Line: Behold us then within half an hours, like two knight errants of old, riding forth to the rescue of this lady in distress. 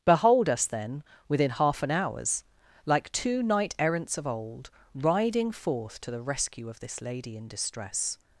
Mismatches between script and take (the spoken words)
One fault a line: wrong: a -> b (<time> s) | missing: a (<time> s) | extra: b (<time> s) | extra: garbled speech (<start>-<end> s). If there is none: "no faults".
no faults